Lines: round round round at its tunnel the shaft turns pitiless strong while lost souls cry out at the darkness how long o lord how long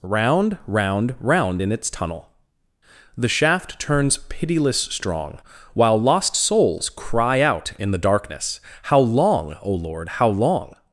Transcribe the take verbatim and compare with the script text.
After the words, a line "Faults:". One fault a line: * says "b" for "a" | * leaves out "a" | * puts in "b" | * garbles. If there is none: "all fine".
round round round in its tunnel the shaft turns pitiless strong while lost souls cry out in the darkness how long o lord how long
Faults:
* says "in" for "at"
* says "in" for "at"